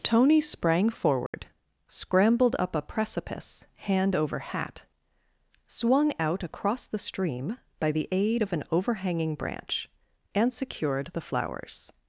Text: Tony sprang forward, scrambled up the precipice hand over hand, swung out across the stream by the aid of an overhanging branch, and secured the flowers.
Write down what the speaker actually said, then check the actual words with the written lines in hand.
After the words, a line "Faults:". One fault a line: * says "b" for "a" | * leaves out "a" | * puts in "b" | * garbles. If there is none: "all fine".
Tony sprang forward, scrambled up a precipice hand over hat, swung out across the stream by the aid of an overhanging branch, and secured the flowers.
Faults:
* says "a" for "the"
* says "hat" for "hand"